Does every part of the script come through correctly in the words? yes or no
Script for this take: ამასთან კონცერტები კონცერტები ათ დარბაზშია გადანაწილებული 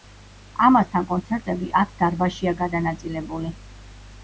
no